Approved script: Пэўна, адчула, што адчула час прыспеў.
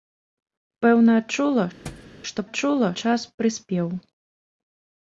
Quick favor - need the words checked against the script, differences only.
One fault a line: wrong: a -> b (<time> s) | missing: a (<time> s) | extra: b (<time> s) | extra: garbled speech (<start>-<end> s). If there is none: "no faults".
no faults